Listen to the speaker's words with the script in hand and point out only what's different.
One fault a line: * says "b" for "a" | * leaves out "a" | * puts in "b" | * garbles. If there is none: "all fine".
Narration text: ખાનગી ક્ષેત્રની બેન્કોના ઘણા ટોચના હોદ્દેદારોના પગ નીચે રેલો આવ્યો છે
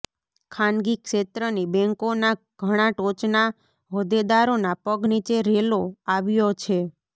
all fine